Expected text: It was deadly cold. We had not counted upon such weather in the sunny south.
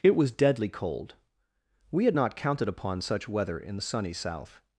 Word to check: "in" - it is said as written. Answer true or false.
true